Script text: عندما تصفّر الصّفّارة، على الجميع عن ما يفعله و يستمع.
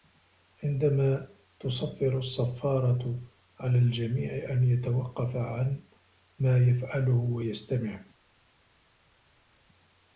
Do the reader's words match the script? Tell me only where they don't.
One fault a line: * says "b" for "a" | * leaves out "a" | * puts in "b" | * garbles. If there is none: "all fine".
* puts in "أن يتوقّف"